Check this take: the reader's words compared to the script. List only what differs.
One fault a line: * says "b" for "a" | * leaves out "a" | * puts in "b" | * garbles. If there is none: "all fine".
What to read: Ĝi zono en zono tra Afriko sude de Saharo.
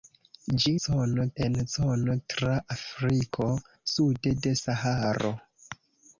all fine